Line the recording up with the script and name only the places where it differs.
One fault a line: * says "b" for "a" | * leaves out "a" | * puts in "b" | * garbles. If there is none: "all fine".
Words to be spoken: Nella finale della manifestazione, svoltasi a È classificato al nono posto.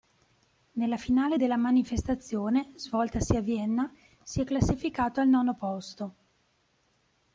* puts in "Vienna si"